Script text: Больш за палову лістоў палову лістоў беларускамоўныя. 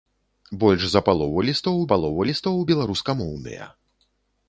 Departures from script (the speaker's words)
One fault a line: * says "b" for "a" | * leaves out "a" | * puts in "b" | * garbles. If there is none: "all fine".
all fine